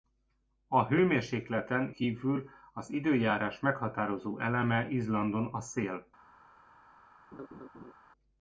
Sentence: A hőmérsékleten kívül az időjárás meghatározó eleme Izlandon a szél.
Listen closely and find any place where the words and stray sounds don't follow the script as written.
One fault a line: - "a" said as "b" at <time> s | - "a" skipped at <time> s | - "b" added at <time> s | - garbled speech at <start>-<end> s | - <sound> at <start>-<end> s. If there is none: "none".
- laugh at 7.3-7.9 s